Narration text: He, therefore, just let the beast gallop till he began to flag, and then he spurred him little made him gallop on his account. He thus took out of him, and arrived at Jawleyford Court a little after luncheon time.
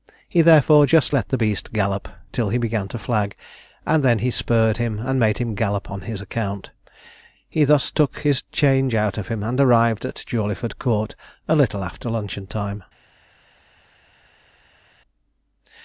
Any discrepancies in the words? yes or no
yes